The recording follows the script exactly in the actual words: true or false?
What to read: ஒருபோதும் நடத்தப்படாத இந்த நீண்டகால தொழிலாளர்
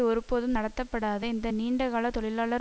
true